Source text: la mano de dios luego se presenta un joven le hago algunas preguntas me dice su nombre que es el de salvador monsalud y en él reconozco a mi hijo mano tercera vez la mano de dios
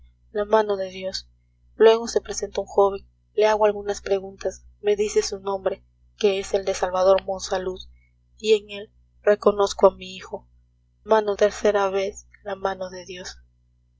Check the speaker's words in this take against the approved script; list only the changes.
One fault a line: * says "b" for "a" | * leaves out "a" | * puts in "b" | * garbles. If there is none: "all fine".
all fine